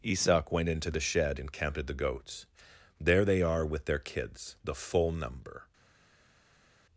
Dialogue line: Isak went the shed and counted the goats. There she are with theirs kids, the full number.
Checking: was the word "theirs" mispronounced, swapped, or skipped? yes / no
yes